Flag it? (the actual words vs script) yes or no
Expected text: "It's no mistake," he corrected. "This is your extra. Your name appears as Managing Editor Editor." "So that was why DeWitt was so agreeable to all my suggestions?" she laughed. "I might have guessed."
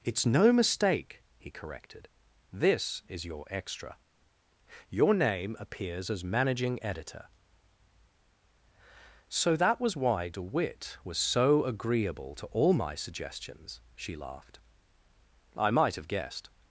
yes